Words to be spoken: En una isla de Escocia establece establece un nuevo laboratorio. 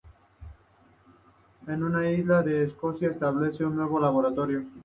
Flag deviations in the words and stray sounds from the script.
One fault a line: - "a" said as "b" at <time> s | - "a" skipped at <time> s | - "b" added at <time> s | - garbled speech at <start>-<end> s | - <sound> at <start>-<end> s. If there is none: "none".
- "establece" skipped at 3.7 s